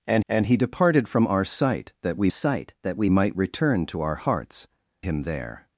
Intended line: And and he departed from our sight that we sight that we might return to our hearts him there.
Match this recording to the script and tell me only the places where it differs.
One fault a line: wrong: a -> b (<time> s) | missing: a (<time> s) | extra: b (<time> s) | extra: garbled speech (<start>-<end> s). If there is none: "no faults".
no faults